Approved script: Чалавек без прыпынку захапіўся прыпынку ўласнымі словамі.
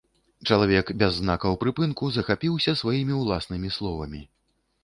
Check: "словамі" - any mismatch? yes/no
no